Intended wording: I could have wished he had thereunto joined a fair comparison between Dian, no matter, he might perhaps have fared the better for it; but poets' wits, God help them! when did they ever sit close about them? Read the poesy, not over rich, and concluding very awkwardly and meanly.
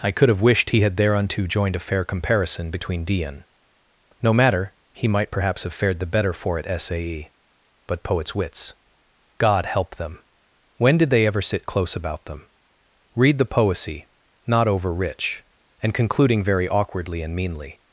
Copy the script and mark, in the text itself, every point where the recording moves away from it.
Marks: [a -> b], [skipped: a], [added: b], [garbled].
I could have wished he had thereunto joined a fair comparison between Dian, no matter, he might perhaps have fared the better for it; [added: sae] but poets' wits, God help them! when did they ever sit close about them? Read the poesy, not over rich, and concluding very awkwardly and meanly.